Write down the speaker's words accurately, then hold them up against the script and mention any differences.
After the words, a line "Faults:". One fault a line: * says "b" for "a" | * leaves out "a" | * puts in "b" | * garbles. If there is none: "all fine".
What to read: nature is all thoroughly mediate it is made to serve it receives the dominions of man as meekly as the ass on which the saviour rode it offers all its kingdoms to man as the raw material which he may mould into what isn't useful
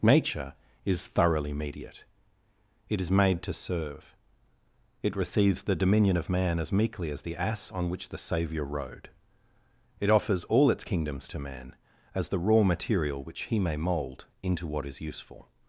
nature is thoroughly mediate it is made to serve it receives the dominion of man as meekly as the ass on which the saviour rode it offers all its kingdoms to man as the raw material which he may mould into what is useful
Faults:
* leaves out "all"
* says "dominion" for "dominions"
* says "is" for "isn't"